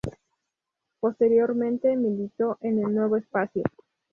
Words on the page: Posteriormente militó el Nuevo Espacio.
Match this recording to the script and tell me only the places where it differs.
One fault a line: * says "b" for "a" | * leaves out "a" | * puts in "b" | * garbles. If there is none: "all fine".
* puts in "en"